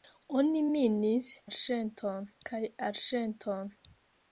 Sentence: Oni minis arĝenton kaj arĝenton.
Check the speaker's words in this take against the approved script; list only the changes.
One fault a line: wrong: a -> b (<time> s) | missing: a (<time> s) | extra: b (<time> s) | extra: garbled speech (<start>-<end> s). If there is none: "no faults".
no faults